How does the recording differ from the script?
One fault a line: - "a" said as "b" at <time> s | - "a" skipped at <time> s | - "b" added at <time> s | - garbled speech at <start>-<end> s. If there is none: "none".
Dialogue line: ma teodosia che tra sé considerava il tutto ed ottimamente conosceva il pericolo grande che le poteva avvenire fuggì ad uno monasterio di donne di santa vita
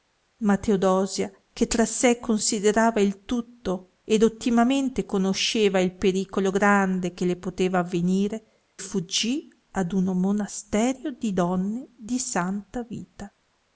none